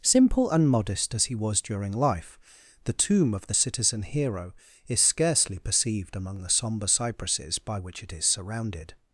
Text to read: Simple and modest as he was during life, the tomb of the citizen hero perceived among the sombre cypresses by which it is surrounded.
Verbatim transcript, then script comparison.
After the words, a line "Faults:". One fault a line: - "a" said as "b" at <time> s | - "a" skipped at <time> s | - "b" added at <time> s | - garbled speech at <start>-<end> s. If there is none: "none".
Simple and modest as he was during life, the tomb of the citizen hero is scarcely perceived among the sombre cypresses by which it is surrounded.
Faults:
- "is scarcely" added at 4.9 s